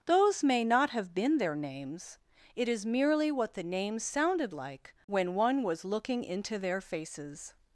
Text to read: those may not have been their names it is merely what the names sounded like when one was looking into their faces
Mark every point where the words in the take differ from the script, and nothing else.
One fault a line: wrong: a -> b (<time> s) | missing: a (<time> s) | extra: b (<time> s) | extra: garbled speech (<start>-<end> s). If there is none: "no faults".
no faults